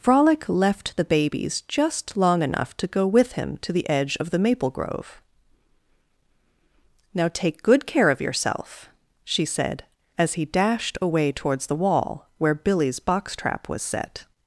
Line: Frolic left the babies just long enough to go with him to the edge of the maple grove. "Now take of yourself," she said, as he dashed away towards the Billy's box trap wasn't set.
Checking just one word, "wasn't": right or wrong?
wrong